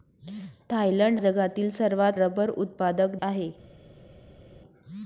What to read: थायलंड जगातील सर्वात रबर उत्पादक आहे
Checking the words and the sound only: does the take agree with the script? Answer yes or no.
yes